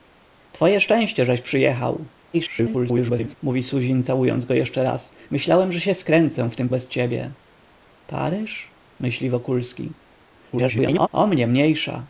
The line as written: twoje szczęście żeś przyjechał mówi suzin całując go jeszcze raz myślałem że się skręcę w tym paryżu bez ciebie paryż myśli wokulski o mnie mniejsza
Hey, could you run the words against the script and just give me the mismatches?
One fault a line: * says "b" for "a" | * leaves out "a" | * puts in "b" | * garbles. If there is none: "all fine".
* garbles
* leaves out "paryżu"
* garbles